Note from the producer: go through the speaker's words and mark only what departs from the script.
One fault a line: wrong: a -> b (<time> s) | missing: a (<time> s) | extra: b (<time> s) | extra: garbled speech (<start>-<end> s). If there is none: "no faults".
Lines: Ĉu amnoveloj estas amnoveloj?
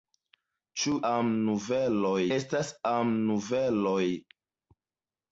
no faults